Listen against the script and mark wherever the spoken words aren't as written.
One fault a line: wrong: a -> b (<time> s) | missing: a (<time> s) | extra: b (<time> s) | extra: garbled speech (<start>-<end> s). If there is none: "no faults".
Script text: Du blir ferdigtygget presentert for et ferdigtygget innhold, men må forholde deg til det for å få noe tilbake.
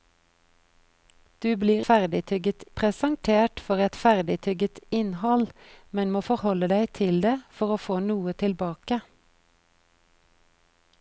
no faults